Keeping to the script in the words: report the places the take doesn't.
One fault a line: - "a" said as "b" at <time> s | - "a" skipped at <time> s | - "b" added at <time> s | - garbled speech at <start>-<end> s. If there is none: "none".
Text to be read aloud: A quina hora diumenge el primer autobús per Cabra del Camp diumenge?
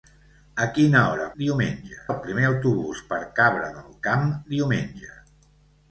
none